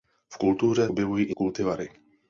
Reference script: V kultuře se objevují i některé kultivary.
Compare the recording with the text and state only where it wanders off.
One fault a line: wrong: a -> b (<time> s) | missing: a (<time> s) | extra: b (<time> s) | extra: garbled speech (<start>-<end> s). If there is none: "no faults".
missing: se (0.9 s)
missing: některé (1.4 s)